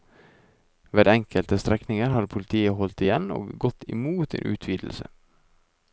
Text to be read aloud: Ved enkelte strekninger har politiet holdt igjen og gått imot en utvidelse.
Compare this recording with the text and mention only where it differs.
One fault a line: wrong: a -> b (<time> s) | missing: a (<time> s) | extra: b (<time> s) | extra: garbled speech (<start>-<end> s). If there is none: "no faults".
no faults